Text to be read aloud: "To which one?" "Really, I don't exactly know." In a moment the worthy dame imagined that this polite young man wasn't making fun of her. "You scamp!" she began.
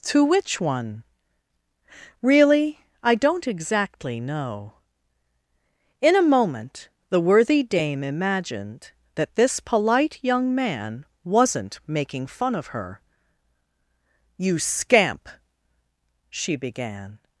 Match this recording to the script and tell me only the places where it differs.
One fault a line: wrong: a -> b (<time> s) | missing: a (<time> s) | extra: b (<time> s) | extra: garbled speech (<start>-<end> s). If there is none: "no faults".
no faults